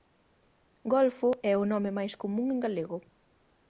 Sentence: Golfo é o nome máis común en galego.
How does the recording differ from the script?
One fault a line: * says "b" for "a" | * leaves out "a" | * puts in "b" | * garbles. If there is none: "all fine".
all fine